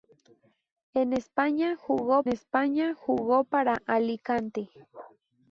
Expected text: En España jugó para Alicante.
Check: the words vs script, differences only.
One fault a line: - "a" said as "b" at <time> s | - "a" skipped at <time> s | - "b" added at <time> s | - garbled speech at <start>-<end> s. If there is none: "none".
- "España jugó" added at 2.3 s